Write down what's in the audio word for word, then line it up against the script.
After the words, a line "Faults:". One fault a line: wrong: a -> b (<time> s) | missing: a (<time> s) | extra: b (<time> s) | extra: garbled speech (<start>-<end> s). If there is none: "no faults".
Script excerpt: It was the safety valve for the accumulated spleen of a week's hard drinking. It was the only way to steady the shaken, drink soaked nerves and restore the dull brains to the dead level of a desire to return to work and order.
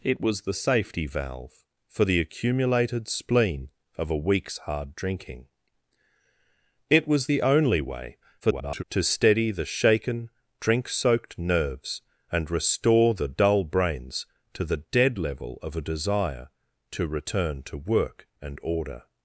It was the safety valve for the accumulated spleen of a week's hard drinking. It was the only way [garbled] to steady the shaken, drink soaked nerves and restore the dull brains to the dead level of a desire to return to work and order.
Faults:
extra: garbled speech (8.4-8.8 s)